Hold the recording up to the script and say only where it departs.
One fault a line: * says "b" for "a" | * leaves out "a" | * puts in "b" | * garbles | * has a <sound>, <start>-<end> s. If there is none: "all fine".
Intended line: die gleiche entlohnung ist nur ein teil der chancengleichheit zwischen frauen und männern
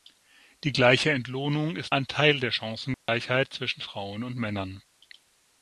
* leaves out "nur"
* has a dropout, 2.9-3.1 s